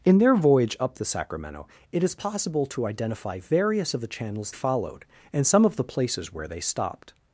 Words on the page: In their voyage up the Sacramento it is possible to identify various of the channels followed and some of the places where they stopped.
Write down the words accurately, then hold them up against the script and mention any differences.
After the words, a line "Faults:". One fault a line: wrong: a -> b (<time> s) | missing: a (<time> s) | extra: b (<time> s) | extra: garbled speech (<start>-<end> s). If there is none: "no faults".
In their voyage up the Sacramento it is possible to identify various of the channels followed and some of the places where they stopped.
Faults:
no faults